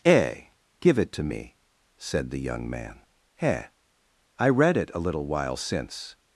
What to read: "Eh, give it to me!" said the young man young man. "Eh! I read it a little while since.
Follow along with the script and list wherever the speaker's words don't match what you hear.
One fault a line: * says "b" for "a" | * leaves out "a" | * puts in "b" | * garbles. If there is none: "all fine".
* leaves out "young man"